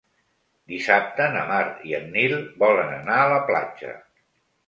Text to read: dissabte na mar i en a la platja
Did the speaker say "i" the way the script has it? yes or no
yes